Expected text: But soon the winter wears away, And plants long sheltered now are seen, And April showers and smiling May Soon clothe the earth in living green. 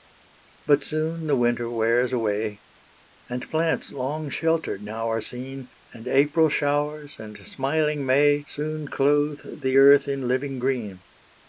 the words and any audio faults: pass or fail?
pass